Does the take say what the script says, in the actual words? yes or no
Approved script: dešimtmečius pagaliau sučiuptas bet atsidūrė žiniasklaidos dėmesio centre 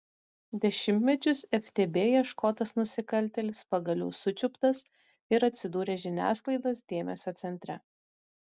no